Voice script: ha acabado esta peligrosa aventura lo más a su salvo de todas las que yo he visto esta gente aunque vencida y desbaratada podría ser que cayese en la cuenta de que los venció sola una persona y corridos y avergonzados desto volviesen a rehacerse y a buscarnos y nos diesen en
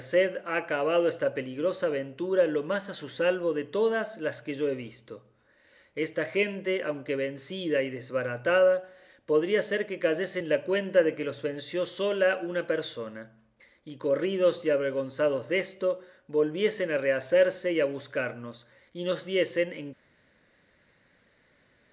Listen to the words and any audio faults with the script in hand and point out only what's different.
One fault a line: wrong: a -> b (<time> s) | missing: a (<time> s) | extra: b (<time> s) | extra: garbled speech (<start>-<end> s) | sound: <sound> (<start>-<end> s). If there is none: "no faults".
no faults